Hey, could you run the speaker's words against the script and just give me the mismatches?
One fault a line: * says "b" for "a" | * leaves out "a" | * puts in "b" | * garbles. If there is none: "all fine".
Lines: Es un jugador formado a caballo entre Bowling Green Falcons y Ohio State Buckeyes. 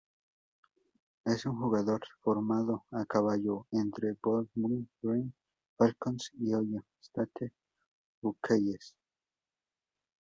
all fine